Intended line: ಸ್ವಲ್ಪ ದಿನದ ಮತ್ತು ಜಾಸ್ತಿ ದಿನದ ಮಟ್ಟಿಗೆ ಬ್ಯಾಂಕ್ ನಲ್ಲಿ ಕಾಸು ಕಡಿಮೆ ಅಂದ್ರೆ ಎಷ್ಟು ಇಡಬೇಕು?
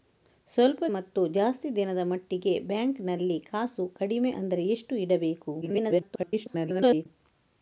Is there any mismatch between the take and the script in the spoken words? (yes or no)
yes